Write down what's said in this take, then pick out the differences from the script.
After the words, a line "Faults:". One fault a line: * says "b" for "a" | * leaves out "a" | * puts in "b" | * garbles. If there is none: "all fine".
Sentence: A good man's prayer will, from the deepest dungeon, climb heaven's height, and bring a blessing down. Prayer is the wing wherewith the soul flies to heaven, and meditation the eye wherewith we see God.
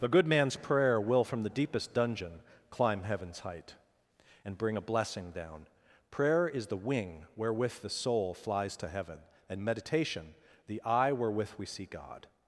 The good man's prayer will, from the deepest dungeon, climb heaven's height, and bring a blessing down. Prayer is the wing wherewith the soul flies to heaven, and meditation the eye wherewith we see God.
Faults:
* says "The" for "A"